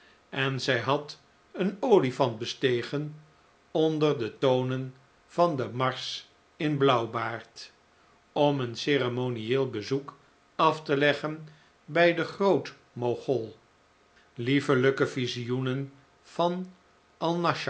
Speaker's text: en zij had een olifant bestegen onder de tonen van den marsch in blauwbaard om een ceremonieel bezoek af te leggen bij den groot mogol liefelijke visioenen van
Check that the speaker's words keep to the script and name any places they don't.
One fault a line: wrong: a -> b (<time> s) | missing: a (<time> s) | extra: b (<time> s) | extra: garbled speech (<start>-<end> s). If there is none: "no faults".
no faults